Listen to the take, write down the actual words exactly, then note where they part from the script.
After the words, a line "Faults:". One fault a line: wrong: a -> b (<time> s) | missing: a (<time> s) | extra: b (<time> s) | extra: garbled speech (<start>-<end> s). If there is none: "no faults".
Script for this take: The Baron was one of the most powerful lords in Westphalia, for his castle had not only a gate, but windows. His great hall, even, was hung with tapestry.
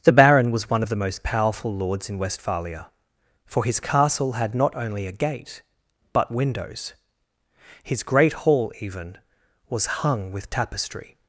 The Baron was one of the most powerful lords in Westphalia, for his castle had not only a gate, but windows. His great hall, even, was hung with tapestry.
Faults:
no faults